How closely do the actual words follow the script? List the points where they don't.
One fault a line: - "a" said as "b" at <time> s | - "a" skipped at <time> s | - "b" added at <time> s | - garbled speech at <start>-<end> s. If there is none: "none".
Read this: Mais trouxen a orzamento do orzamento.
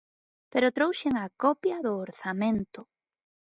- "Mais" said as "Pero" at 0.5 s
- "orzamento" said as "copia" at 1.4 s